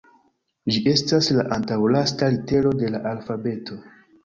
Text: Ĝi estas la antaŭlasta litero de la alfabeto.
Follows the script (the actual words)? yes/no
yes